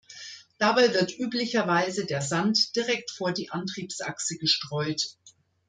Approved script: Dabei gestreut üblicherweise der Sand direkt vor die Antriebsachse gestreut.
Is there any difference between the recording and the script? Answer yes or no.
yes